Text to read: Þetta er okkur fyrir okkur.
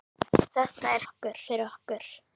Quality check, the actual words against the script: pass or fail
pass